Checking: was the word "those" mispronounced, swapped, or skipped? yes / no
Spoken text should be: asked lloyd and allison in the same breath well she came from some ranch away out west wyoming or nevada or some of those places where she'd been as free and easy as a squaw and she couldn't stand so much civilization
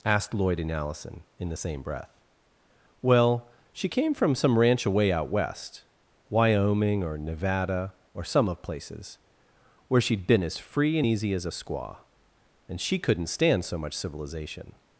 yes